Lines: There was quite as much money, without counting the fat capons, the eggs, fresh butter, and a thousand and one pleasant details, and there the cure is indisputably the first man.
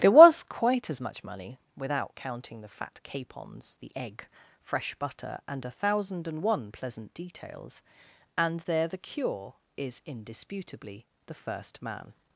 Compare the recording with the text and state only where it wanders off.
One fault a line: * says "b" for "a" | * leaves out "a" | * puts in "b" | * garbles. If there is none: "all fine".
* says "egg" for "eggs"